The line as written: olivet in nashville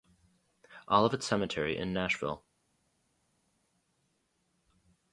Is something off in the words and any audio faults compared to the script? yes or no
yes